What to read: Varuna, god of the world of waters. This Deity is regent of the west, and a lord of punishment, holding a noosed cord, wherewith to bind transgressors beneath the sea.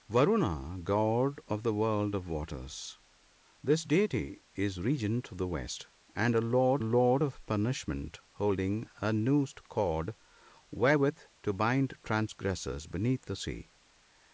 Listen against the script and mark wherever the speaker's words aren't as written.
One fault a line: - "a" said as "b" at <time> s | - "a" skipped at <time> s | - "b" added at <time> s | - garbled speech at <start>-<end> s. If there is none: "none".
- "lord" added at 6.8 s